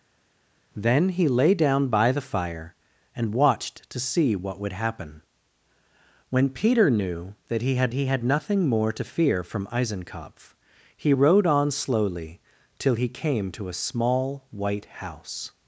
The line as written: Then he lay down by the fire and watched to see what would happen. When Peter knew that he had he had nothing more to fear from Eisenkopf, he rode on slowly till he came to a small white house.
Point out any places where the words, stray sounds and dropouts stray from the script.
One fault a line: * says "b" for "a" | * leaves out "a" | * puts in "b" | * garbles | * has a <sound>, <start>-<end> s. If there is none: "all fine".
all fine